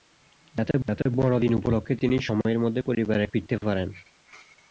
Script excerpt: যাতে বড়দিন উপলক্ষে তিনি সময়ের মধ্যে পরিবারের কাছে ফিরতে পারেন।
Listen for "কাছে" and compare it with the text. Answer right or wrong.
wrong